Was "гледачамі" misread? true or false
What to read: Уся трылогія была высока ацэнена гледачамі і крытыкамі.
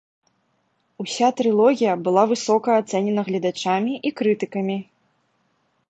false